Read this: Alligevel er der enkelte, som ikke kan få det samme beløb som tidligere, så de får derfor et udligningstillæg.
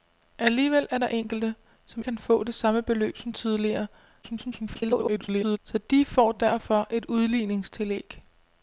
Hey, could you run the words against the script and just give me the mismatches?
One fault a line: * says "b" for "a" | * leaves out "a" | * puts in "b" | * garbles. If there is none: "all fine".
* leaves out "ikke"
* garbles